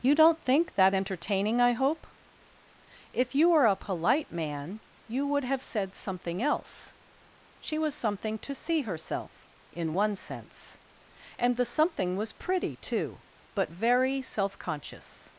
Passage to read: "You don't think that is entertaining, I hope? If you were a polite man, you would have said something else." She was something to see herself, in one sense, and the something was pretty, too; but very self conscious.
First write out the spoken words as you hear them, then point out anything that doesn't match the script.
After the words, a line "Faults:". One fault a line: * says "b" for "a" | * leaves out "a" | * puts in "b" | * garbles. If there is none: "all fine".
"You don't think that entertaining, I hope? If you were a polite man, you would have said something else." She was something to see herself, in one sense, and the something was pretty, too; but very self conscious.
Faults:
* leaves out "is"